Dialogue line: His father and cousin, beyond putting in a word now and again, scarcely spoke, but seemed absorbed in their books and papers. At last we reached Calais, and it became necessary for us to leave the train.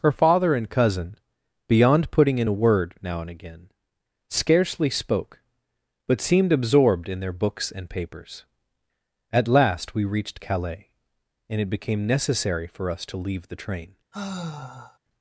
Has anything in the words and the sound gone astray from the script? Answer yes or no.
yes